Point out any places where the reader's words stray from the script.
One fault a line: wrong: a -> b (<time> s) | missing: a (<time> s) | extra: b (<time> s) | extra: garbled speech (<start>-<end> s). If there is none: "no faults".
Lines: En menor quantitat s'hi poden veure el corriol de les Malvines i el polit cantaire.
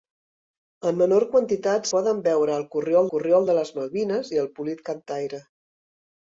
missing: s'hi (1.9 s)
extra: corriol (3.1 s)